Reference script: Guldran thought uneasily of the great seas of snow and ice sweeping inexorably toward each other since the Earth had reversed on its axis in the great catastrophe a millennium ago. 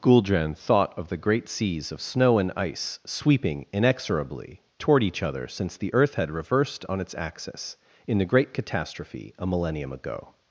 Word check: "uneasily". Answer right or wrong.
wrong